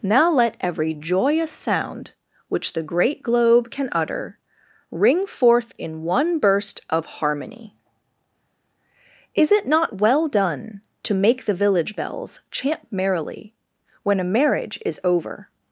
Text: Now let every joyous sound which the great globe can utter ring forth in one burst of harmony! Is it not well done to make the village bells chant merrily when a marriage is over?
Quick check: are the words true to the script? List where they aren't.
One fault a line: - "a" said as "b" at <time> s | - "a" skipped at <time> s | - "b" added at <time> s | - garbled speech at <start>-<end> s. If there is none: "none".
none